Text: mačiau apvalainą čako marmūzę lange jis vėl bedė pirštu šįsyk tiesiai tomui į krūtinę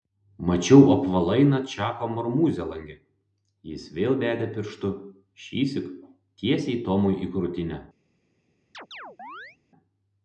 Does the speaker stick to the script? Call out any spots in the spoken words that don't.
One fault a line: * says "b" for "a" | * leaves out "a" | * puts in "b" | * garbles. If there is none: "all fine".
all fine